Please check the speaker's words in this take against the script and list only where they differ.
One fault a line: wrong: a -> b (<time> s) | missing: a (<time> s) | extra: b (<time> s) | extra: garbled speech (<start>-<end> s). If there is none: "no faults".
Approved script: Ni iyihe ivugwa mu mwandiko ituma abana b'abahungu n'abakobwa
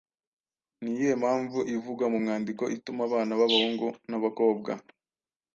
extra: mpamvu (1.2 s)